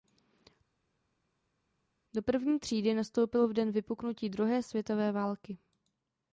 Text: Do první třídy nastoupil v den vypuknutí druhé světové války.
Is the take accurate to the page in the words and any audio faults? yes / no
yes